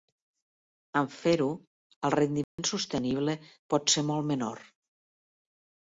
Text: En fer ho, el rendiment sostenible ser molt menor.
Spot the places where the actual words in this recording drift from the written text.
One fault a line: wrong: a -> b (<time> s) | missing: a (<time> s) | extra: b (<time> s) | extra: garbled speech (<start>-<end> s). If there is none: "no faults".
extra: pot (3.7 s)